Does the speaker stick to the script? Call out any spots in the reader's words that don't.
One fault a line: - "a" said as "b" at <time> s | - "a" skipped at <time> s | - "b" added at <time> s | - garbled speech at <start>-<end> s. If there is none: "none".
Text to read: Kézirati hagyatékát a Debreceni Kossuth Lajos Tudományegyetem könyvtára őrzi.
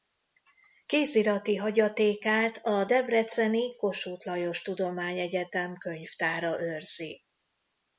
none